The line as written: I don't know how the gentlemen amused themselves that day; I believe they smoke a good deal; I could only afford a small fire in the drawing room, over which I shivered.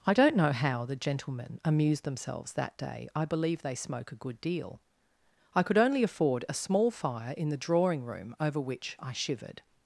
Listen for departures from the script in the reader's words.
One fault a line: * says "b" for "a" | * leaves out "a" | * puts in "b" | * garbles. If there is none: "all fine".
all fine